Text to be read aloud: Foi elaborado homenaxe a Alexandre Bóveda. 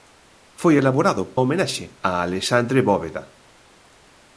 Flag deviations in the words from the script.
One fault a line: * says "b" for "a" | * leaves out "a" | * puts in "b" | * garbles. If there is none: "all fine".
all fine